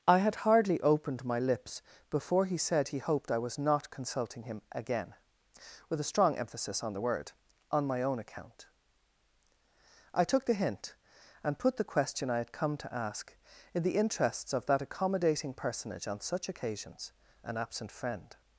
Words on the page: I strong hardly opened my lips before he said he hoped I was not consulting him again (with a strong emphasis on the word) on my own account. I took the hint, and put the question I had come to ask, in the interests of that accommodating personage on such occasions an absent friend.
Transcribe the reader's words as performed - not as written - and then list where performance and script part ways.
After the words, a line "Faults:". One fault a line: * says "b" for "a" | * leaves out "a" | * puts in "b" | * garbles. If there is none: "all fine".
I had hardly opened my lips before he said he hoped I was not consulting him again (with a strong emphasis on the word) on my own account. I took the hint, and put the question I had come to ask, in the interests of that accommodating personage on such occasions an absent friend.
Faults:
* says "had" for "strong"